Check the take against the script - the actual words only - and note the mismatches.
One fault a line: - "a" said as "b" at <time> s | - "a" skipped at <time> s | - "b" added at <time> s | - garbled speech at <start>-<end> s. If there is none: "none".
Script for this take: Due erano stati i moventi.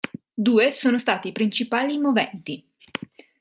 - "erano" said as "sono" at 0.7 s
- "principali" added at 1.3 s